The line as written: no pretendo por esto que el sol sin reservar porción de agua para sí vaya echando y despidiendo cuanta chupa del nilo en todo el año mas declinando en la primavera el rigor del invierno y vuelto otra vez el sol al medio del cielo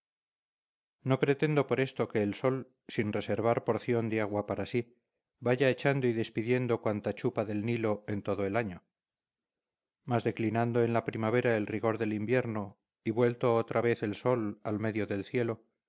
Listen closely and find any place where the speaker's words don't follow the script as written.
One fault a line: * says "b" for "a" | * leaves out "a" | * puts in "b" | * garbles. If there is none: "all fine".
all fine